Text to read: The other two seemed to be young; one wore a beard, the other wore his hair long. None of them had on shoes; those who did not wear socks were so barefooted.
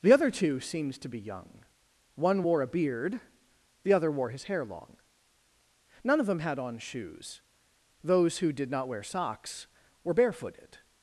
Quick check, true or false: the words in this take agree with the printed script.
false